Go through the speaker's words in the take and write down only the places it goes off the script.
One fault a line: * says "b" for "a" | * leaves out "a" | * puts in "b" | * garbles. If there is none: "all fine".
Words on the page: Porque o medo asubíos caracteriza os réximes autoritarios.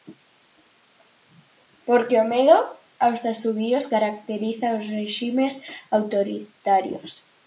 * puts in "aos"